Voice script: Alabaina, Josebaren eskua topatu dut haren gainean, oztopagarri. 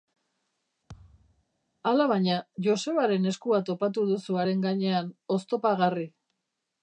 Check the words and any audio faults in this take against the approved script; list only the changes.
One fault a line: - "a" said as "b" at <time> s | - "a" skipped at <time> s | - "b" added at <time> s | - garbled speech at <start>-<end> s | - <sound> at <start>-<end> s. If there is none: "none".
- thud at 0.9-1.4 s
- "dut" said as "duzu" at 4.1 s